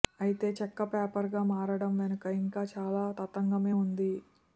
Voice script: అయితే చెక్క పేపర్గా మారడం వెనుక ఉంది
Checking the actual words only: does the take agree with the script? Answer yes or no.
no